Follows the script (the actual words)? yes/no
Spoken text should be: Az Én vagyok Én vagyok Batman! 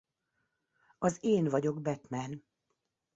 no